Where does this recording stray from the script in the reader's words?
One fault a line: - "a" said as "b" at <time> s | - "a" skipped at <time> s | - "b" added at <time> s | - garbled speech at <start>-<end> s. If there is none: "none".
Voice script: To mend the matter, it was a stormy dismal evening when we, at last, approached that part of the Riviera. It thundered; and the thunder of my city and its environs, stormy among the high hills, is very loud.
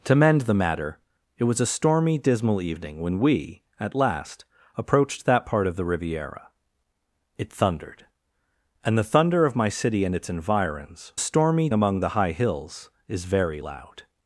none